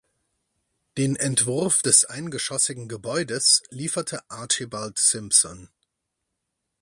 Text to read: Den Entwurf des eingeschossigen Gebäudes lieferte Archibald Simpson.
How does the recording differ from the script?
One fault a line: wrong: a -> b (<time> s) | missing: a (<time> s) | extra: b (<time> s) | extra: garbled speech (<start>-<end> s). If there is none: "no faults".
no faults